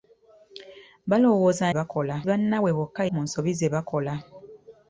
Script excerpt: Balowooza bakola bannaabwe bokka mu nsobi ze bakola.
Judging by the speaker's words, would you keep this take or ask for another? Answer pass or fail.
pass